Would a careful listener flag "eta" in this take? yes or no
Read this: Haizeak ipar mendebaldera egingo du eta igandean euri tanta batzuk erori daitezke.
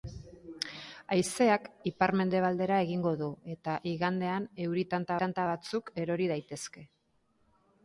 no